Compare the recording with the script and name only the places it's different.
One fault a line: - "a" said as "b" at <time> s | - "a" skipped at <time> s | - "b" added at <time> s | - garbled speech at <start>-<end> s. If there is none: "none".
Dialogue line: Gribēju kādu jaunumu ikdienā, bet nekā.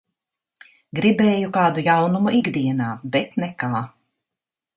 none